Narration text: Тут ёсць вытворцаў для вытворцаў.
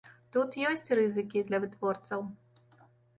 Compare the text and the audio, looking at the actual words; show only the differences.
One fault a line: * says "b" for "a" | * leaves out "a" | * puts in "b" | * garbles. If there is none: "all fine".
* says "рызыкі" for "вытворцаў"